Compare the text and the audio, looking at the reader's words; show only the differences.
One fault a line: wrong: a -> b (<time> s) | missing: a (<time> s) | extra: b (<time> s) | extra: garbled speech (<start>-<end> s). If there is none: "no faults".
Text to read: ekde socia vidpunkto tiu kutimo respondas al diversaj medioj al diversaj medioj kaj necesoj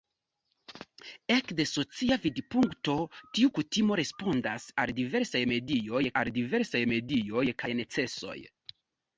no faults